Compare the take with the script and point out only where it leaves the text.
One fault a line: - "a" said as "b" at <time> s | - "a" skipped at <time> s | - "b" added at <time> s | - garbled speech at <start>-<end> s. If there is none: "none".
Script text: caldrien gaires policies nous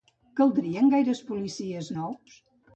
none